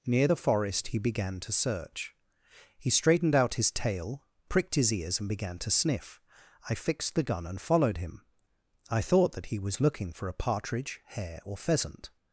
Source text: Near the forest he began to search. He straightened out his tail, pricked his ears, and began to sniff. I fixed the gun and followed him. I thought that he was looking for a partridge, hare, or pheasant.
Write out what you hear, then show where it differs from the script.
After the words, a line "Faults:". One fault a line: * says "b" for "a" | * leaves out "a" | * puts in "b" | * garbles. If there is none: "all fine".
Near the forest he began to search. He straightened out his tail, pricked his ears, and began to sniff. I fixed the gun and followed him. I thought that he was looking for a partridge, hare, or pheasant.
Faults:
all fine